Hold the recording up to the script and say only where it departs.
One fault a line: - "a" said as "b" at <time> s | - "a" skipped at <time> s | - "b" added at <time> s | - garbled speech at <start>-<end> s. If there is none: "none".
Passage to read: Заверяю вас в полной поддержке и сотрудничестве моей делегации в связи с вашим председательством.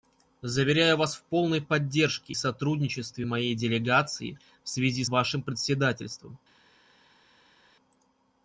- "и" skipped at 2.3 s
- "с" skipped at 5.0 s